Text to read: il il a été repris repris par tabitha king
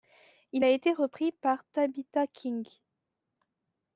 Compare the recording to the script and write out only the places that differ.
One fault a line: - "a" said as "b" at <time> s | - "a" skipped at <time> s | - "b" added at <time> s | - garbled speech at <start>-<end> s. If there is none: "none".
- "il" skipped at 0.7 s
- "repris" skipped at 1.3 s